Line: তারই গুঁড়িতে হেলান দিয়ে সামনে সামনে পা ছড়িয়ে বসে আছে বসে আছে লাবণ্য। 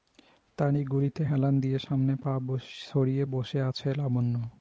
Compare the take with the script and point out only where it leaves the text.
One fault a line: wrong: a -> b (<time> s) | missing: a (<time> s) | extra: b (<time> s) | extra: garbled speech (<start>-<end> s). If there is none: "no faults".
missing: সামনে (2.1 s)
missing: বসে আছে (3.9 s)